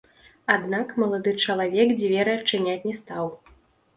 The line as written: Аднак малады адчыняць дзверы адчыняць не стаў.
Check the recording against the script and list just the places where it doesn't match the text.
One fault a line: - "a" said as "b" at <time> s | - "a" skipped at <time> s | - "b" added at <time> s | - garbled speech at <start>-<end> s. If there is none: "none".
- "адчыняць" said as "чалавек" at 1.4 s